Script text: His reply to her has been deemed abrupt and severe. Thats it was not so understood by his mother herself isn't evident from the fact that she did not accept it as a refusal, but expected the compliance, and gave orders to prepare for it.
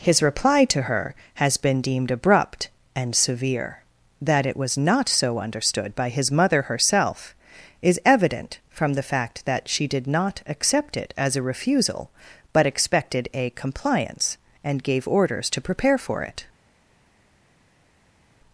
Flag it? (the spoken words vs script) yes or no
yes